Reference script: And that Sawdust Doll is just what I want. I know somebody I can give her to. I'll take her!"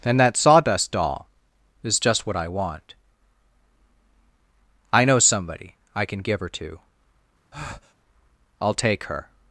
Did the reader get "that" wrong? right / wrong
right